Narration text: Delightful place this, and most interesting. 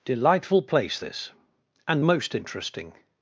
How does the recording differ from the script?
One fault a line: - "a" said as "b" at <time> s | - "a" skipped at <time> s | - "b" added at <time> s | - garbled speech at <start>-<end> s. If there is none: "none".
none